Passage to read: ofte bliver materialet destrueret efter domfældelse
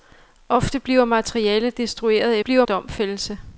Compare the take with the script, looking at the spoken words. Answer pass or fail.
fail